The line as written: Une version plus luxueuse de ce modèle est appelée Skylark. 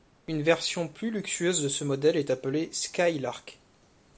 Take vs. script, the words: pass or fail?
pass